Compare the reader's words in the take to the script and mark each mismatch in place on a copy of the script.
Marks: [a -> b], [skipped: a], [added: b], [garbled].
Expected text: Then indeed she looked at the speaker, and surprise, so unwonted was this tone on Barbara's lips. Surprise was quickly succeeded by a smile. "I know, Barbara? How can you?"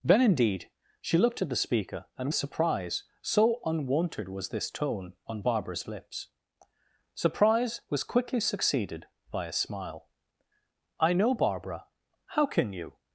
Then indeed she looked at the speaker, and surprise, so unwonted was this tone on Barbara's lips. Surprise was quickly succeeded by a smile. "I know, Barbara? How can you?"